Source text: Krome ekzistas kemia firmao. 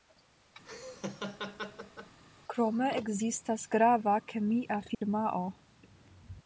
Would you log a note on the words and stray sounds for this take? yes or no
yes